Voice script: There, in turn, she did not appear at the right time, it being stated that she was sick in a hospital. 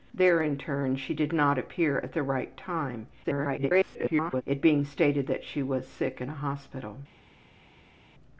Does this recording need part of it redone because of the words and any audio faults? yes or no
yes